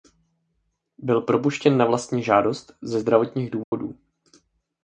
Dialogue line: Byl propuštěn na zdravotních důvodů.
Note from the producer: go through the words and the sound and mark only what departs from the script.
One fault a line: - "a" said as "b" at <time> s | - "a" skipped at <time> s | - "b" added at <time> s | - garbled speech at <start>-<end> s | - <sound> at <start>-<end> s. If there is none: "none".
- "vlastní žádost ze" added at 1.9 s
- dropout at 3.6-3.7 s